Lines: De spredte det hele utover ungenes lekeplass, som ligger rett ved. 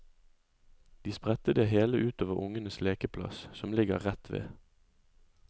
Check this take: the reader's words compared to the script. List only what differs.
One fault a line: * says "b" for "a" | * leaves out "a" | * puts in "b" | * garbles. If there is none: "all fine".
all fine